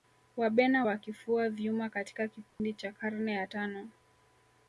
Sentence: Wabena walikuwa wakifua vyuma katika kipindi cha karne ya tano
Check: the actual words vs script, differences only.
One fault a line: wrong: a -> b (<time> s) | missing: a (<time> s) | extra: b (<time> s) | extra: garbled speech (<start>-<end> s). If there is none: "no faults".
missing: walikuwa (0.8 s)